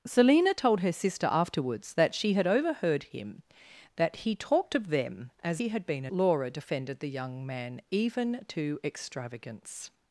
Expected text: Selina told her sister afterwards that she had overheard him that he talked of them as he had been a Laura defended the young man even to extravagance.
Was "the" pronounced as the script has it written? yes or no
yes